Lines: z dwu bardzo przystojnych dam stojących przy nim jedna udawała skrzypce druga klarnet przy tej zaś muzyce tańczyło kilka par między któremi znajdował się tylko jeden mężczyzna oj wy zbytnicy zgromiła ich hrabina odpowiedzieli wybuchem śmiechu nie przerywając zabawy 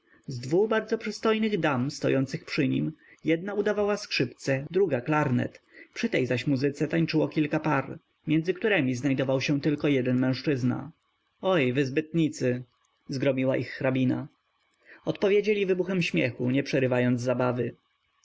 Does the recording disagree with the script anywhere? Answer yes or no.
no